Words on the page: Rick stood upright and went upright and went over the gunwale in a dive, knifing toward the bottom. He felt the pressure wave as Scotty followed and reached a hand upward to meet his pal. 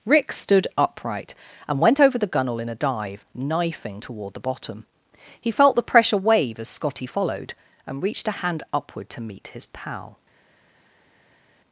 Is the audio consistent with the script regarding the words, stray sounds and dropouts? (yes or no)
no